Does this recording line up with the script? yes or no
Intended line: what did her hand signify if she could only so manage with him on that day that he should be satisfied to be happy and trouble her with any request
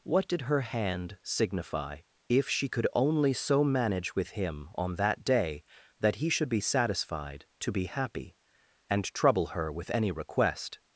yes